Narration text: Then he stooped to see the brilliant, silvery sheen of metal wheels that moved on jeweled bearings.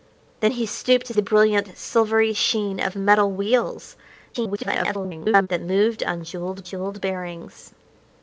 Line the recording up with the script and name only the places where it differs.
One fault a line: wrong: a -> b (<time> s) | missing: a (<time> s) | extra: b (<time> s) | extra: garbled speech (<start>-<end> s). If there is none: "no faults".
missing: see (1.1 s)
extra: garbled speech (4.3-5.5 s)
extra: jeweled (6.6 s)